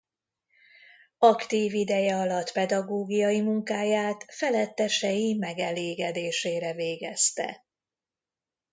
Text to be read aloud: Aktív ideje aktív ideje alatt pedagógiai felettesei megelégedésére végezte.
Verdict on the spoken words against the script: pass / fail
fail